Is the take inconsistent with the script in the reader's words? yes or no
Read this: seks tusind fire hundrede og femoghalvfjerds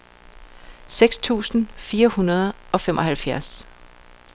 no